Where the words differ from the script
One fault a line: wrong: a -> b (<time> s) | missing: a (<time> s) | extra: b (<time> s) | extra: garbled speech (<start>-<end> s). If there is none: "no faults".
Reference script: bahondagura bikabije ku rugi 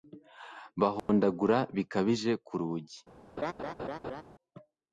no faults